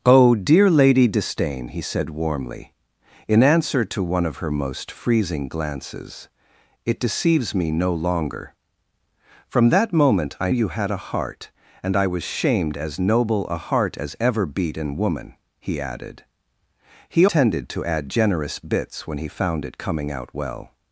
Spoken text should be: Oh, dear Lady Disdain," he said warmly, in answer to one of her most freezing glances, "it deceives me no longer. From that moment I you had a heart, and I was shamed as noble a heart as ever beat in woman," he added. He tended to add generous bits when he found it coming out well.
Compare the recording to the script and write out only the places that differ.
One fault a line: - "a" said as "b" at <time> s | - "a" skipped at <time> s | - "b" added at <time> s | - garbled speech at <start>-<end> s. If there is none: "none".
none